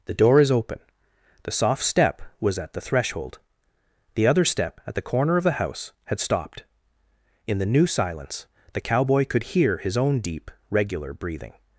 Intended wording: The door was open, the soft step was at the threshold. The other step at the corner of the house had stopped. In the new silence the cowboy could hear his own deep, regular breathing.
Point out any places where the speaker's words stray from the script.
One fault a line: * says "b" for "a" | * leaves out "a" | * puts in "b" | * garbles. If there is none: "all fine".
* says "is" for "was"